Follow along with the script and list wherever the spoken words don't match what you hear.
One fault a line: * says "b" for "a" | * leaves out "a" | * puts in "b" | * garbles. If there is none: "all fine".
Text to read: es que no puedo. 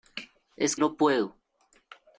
* leaves out "que"